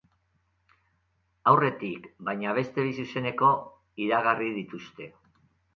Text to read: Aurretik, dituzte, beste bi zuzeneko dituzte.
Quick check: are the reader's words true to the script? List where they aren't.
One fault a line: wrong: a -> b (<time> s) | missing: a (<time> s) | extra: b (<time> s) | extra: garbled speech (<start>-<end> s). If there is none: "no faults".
wrong: dituzte -> baina (2.3 s)
extra: iragarri (4.1 s)